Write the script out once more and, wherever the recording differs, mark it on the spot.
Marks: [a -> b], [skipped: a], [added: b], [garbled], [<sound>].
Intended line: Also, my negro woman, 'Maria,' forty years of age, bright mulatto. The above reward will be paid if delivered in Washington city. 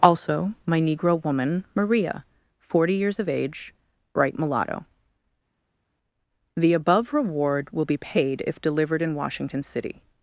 Also, my negro woman, 'Maria,' forty years of age, bright mulatto. The above reward will be paid if delivered in Washington city.